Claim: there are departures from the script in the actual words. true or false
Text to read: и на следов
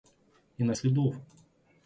false